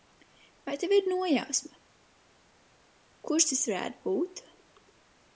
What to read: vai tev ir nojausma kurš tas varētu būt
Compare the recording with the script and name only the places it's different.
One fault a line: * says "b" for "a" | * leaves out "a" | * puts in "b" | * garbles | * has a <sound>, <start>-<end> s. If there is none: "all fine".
all fine